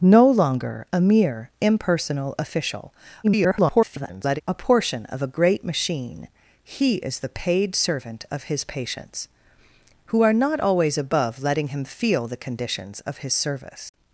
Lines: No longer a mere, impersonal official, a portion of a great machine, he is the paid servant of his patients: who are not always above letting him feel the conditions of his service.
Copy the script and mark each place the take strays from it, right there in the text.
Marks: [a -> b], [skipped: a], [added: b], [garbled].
No longer a mere, impersonal official, [garbled] a portion of a great machine, he is the paid servant of his patients: who are not always above letting him feel the conditions of his service.